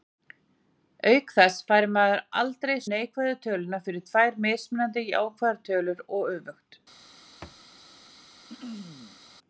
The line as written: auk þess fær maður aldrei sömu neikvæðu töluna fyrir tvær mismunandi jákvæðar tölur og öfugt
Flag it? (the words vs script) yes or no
yes